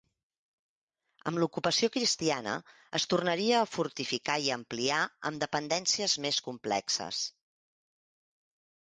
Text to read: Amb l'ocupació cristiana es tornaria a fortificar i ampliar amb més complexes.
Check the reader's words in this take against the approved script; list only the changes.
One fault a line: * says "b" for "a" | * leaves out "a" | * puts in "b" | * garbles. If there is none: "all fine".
* puts in "dependències"